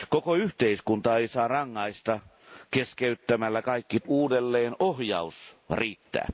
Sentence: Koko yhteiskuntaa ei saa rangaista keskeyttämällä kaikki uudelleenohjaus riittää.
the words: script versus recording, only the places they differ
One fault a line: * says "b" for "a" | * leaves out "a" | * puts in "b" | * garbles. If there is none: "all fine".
all fine